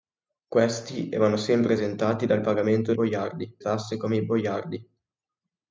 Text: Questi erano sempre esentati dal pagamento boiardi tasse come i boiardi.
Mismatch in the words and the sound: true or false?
false